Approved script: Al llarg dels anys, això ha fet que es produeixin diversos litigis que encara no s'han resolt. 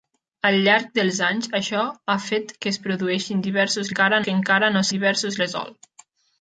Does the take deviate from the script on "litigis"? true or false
true